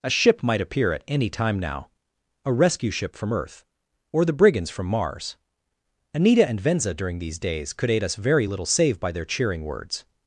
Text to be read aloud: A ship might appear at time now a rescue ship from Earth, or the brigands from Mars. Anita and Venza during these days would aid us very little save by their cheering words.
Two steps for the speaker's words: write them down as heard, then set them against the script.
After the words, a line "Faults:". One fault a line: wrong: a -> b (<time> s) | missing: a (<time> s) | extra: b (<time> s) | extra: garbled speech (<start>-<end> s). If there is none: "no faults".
A ship might appear at any time now a rescue ship from Earth, or the brigands from Mars. Anita and Venza during these days could aid us very little save by their cheering words.
Faults:
extra: any (1.1 s)
wrong: would -> could (7.7 s)